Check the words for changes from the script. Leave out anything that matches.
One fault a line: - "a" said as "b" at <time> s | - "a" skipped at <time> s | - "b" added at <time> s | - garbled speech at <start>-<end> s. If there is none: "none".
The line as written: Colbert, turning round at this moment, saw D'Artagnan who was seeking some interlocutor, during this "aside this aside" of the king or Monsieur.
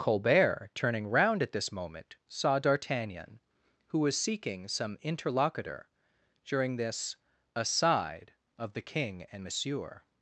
- "this aside" skipped at 8.3 s
- "or" said as "and" at 9.3 s